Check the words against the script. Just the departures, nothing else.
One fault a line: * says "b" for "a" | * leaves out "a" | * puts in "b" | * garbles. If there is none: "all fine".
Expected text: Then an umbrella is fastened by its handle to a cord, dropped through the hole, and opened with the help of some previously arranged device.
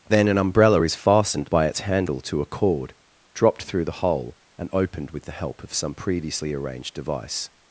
all fine